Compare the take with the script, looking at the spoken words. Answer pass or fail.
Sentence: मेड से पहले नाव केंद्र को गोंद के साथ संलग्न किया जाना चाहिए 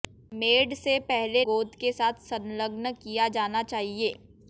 fail